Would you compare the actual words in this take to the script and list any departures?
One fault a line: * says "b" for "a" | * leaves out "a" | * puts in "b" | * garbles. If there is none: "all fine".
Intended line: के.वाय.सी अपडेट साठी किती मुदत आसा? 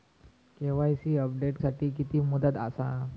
all fine